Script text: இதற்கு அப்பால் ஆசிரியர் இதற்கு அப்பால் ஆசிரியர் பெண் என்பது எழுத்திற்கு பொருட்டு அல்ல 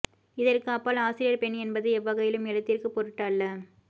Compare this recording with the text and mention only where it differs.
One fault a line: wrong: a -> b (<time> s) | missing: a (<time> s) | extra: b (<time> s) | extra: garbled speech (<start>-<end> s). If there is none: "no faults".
missing: இதற்கு அப்பால் ஆசிரியர் (1.4 s)
extra: எவ்வகையிலும் (2.0 s)